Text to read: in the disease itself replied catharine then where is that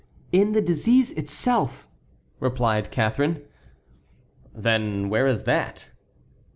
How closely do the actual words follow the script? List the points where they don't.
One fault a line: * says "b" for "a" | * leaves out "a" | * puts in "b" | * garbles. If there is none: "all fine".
all fine